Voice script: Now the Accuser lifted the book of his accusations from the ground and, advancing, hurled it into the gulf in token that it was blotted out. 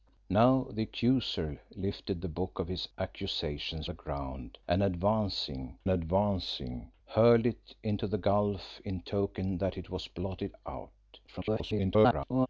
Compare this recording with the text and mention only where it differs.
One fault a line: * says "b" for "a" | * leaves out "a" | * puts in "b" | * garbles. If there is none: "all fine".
* leaves out "from"
* puts in "advancing"
* garbles